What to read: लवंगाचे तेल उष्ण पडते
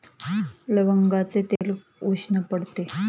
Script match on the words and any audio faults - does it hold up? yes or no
no